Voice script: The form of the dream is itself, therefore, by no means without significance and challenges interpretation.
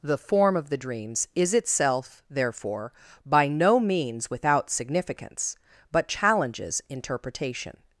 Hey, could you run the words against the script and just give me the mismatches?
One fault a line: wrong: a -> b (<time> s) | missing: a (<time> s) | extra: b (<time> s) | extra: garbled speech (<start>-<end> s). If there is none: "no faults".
wrong: dream -> dreams (0.8 s)
wrong: and -> but (5.9 s)